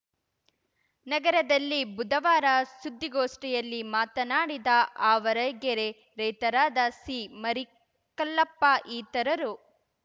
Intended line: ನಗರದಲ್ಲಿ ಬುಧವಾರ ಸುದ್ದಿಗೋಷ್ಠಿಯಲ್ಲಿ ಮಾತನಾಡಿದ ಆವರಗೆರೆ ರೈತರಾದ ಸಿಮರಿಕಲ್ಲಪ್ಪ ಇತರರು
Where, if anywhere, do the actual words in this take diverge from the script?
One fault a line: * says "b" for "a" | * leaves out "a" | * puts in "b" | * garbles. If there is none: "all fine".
all fine